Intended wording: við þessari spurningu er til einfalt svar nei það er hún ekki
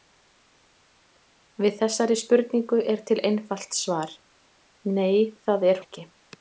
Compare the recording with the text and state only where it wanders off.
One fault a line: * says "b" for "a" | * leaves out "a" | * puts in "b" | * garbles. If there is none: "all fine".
* leaves out "hún"